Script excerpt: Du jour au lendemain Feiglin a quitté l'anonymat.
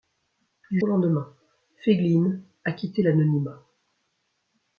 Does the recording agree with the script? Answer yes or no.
no